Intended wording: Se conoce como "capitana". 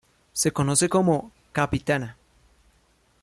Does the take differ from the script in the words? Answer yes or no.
no